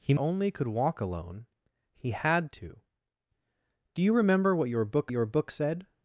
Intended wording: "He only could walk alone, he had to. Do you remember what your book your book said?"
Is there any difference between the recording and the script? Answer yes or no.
no